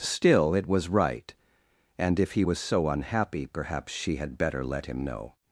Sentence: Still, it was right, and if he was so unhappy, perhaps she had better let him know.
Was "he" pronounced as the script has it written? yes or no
yes